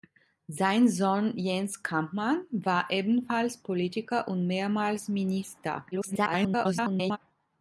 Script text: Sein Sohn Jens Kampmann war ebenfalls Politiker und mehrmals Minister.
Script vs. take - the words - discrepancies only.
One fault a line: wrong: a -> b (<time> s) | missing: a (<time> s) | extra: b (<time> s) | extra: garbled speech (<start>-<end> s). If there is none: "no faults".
extra: garbled speech (5.9-7.2 s)